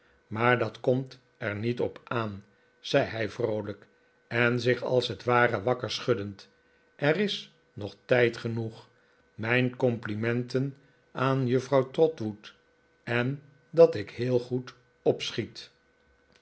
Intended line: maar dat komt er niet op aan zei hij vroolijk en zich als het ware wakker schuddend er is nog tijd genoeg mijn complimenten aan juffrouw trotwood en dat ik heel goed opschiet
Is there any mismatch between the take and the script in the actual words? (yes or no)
no